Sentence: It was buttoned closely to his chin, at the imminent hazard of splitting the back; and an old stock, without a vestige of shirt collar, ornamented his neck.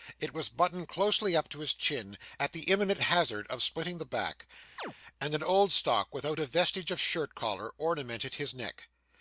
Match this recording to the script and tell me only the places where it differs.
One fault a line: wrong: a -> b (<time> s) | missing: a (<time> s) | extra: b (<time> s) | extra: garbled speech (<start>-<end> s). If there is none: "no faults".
extra: up (1.4 s)